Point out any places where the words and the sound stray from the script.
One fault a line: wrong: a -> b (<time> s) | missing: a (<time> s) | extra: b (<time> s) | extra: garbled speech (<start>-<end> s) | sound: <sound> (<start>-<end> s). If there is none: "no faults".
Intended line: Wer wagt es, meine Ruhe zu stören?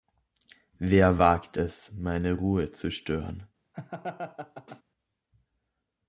sound: laugh (3.7-4.8 s)